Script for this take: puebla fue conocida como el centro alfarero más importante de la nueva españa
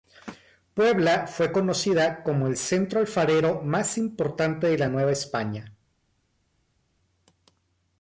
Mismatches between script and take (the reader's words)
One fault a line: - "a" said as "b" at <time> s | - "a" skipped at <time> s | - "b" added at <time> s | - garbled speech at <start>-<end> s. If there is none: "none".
none